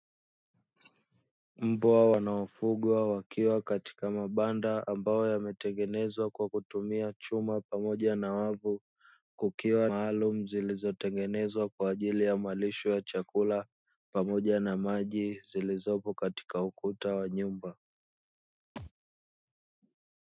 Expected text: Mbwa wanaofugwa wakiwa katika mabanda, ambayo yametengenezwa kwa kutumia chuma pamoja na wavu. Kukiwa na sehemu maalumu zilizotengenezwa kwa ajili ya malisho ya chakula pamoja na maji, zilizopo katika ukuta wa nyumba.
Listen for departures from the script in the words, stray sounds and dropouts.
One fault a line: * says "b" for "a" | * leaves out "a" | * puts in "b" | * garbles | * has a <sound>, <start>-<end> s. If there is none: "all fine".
* leaves out "na sehemu"
* has a thud, 18.8-18.9 s